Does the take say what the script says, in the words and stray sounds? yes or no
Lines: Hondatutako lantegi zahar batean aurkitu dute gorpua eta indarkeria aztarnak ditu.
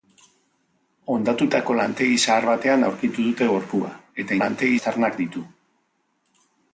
no